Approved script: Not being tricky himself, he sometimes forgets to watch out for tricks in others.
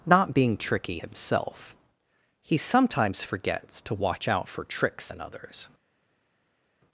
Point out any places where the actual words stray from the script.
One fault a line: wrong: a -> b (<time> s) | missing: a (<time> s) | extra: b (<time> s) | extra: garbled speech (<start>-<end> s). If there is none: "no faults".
no faults